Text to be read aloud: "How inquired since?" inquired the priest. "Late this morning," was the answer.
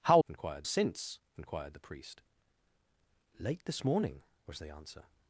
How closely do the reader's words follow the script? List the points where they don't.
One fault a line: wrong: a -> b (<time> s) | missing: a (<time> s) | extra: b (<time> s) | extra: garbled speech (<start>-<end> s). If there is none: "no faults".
no faults